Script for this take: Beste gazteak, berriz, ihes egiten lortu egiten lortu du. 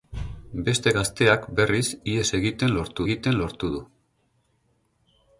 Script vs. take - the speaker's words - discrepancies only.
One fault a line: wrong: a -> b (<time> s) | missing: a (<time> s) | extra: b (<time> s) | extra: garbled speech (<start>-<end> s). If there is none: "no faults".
no faults